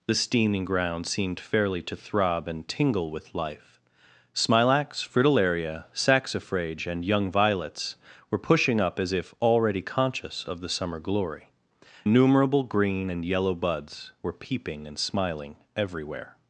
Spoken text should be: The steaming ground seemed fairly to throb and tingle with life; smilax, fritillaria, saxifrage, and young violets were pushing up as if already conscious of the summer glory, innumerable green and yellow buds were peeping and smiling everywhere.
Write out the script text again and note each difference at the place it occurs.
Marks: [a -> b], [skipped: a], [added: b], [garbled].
The steaming ground seemed fairly to throb and tingle with life; smilax, fritillaria, saxifrage, and young violets were pushing up as if already conscious of the summer glory, innumerable green and yellow buds were peeping and smiling everywhere.